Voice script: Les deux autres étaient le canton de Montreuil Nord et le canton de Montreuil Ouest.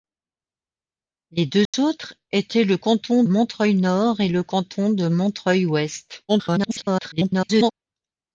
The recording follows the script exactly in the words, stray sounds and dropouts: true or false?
false